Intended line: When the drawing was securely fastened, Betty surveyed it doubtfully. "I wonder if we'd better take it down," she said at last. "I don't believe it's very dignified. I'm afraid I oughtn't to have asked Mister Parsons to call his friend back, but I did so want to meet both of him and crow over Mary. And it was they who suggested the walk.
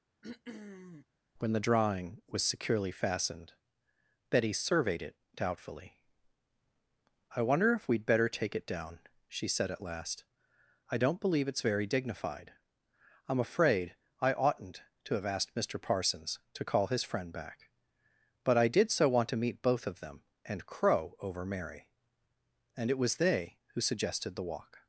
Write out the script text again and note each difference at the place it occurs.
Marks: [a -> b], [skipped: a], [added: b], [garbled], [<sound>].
[throat clearing] When the drawing was securely fastened, Betty surveyed it doubtfully. "I wonder if we'd better take it down," she said at last. "I don't believe it's very dignified. I'm afraid I oughtn't to have asked Mister Parsons to call his friend back, but I did so want to meet both of [him -> them] and crow over Mary. And it was they who suggested the walk.